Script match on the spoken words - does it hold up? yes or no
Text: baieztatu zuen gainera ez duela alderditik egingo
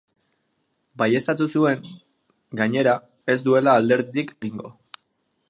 yes